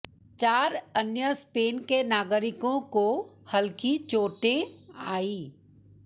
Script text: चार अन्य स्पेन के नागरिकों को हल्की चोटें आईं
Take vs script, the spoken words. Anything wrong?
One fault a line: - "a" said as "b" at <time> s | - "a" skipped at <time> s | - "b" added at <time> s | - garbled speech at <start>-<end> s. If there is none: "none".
none